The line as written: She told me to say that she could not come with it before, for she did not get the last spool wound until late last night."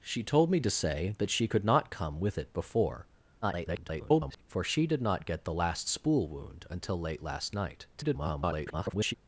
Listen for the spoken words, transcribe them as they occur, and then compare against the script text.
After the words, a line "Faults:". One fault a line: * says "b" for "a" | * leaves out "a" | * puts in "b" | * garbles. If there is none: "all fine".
She told me to say that she could not come with it before, [garbled] for she did not get the last spool wound until late last night." [garbled]
Faults:
* garbles
* garbles